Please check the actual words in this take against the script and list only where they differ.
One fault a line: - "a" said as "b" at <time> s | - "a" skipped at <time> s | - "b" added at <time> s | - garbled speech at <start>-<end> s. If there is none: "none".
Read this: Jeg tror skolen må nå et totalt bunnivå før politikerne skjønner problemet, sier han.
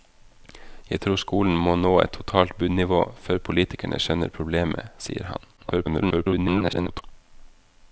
- garbled speech at 5.6-7.0 s